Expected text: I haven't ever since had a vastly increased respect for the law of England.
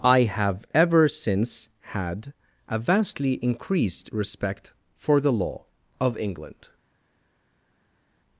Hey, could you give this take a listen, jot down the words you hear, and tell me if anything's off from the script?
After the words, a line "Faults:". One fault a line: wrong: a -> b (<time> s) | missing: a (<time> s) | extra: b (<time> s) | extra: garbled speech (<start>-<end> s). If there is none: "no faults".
I have ever since had a vastly increased respect for the law of England.
Faults:
wrong: haven't -> have (0.2 s)